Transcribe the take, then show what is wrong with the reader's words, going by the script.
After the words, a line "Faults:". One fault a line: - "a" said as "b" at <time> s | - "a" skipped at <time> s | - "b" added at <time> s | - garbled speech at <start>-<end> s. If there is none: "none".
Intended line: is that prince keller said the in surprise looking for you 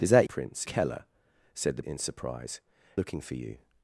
is that prince keller said the in surprise looking for you
Faults:
none